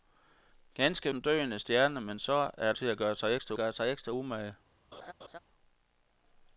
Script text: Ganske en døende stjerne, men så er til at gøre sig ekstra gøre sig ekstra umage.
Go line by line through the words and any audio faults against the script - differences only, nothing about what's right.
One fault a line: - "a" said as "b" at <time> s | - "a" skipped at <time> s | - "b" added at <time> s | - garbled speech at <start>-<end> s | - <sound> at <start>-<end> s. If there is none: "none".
- laugh at 4.9-5.4 s